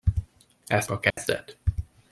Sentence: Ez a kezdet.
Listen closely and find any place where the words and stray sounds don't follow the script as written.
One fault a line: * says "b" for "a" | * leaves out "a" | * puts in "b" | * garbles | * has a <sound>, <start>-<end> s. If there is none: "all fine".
* has a dropout, 1.1-1.2 s